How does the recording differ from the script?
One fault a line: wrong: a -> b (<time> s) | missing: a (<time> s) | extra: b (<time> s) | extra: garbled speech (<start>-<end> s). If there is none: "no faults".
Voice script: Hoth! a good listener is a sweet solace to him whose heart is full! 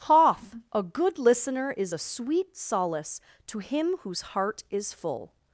no faults